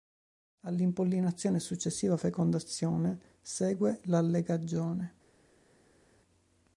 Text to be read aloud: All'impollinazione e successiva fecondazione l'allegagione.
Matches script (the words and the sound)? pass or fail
fail